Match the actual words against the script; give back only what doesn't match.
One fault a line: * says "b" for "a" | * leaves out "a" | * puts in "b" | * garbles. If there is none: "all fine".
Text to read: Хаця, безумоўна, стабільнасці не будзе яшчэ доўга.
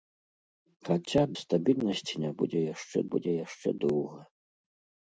* leaves out "безумоўна"
* puts in "будзе яшчэ"